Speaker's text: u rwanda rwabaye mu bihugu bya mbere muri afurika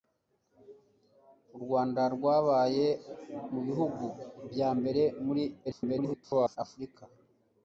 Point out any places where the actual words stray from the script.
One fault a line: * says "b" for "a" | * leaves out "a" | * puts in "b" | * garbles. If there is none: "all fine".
* garbles